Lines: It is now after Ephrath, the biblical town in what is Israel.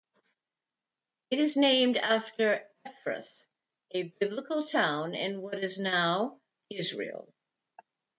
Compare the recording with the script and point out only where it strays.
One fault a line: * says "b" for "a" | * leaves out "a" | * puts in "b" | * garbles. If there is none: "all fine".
* says "named" for "now"
* says "a" for "the"
* puts in "now"